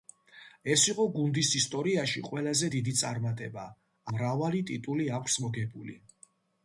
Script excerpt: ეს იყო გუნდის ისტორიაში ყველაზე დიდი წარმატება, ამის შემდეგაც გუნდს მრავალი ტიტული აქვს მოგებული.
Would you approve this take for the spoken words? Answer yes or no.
no